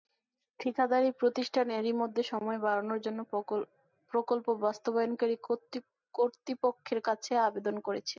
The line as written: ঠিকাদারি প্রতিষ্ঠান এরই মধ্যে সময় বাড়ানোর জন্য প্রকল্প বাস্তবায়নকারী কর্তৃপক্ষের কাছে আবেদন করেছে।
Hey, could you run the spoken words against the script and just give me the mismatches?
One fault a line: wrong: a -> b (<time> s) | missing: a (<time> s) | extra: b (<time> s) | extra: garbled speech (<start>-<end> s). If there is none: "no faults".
no faults